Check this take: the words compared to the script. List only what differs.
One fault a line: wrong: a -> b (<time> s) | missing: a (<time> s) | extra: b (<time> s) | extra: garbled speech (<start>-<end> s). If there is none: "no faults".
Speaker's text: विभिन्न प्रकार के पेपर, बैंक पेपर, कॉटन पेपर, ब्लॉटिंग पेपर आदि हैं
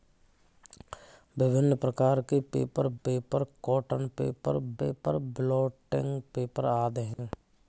missing: बैंक (2.9 s)
extra: पेपर (4.8 s)